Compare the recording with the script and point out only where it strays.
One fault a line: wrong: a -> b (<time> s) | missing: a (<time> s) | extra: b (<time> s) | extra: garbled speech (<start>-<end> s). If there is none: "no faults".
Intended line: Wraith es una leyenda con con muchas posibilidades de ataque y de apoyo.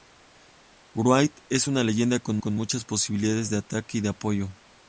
no faults